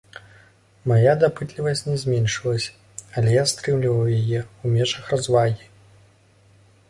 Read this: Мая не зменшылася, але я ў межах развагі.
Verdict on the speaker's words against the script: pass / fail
fail